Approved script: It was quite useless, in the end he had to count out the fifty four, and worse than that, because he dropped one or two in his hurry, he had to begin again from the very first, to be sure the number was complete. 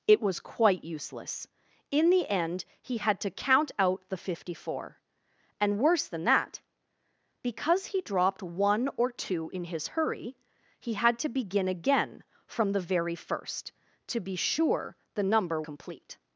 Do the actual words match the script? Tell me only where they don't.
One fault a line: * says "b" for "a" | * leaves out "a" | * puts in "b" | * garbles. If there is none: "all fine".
* leaves out "was"